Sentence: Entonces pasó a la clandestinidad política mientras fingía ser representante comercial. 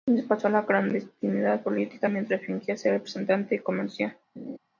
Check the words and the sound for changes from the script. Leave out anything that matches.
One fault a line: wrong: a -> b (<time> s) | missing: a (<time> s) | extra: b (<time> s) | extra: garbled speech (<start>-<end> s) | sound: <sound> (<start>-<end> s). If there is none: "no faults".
sound: laugh (4.4-4.6 s)